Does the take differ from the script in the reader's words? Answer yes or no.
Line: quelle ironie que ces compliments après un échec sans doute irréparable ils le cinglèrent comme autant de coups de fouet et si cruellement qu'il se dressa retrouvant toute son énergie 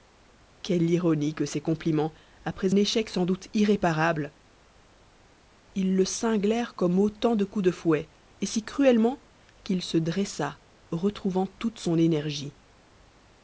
yes